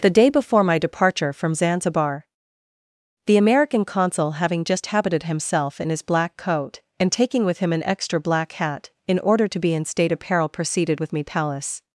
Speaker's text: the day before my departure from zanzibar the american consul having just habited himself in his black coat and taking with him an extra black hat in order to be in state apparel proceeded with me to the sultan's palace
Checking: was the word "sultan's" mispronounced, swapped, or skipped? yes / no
yes